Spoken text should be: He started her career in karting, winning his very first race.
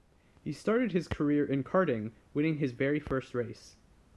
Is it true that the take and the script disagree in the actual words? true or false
true